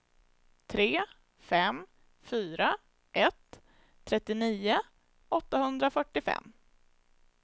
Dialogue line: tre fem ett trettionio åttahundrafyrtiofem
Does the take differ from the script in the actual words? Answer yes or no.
yes